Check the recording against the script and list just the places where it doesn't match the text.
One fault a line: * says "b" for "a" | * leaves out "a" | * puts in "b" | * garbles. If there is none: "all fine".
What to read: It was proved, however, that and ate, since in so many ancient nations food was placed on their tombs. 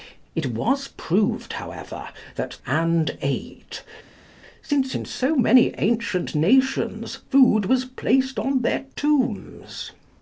all fine